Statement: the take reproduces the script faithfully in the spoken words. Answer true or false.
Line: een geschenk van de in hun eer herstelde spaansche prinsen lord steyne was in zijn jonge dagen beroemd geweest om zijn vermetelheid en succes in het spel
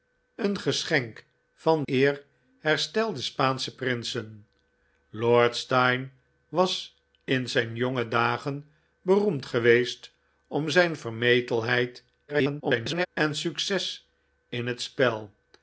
false